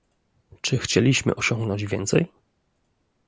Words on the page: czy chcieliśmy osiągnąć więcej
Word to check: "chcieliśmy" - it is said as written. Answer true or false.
true